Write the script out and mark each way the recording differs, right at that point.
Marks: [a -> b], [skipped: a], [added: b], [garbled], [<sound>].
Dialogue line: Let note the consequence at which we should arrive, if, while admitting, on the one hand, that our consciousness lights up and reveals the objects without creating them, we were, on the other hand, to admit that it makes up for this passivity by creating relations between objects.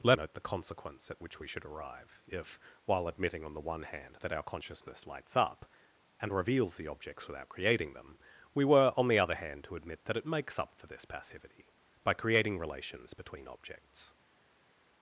Let note the consequence at which we should arrive, if, while admitting, on the one hand, that our consciousness lights up and reveals the objects without creating them, we were, on the other hand, to admit that it makes up for this passivity by creating relations between objects.